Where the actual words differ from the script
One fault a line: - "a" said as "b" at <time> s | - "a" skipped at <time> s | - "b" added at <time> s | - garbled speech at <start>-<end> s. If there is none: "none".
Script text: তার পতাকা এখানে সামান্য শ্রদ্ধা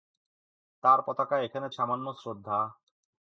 none